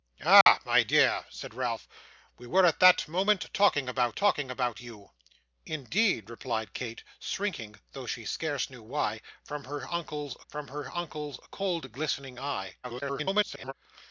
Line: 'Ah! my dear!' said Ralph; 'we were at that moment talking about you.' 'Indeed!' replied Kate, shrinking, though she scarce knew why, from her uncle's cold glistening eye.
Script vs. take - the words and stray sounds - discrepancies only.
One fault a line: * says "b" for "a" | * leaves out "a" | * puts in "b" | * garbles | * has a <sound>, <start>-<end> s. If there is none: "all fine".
* has a dropout, 0.4-0.5 s
* puts in "talking about"
* puts in "from her uncle's"
* garbles